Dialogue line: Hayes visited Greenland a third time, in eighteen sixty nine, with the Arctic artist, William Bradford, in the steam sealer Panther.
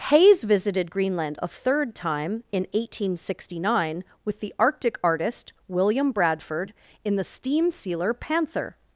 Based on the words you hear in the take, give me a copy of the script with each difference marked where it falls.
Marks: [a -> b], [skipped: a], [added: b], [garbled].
Hayes visited Greenland a third time, in eighteen sixty nine, with the Arctic artist, William Bradford, in the steam sealer Panther.